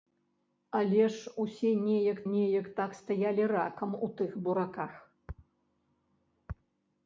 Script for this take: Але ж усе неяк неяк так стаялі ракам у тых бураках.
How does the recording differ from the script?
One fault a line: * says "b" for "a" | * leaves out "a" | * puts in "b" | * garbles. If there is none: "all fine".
all fine